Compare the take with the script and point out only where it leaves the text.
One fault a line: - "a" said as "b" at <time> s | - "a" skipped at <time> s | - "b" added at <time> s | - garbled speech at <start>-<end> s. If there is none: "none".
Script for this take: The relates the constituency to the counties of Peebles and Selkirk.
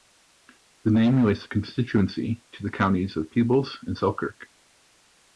- "name" added at 0.9 s